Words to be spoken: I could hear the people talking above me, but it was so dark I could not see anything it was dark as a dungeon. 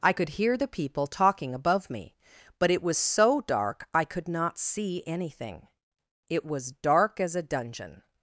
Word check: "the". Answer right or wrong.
right